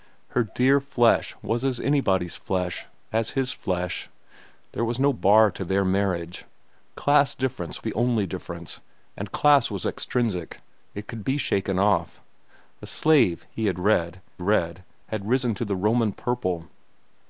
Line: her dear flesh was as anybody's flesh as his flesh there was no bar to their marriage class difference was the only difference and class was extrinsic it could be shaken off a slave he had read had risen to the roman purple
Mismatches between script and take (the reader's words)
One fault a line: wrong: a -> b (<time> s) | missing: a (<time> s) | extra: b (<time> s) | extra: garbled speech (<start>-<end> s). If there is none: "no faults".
missing: was (7.8 s)
extra: read (14.4 s)